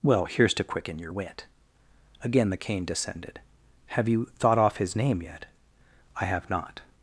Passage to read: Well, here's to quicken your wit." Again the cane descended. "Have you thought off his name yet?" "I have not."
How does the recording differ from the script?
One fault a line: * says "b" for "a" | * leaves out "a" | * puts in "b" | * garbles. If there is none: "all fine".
all fine